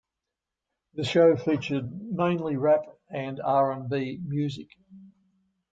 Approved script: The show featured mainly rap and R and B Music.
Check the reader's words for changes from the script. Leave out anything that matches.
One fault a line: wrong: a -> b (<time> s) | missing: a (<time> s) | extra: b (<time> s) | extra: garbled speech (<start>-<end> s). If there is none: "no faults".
no faults